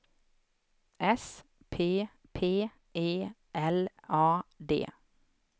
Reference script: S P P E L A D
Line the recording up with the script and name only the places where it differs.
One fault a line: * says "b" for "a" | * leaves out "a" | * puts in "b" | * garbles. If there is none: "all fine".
all fine